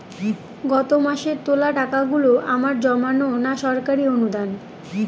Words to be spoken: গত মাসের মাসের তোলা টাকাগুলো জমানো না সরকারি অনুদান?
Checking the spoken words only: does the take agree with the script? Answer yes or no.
no